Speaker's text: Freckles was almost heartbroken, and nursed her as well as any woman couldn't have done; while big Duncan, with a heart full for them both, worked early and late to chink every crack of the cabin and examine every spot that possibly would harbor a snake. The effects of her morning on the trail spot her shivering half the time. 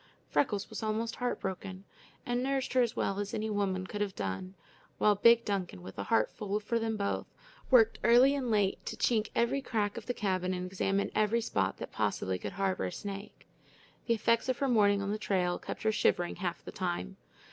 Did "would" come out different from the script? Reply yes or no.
yes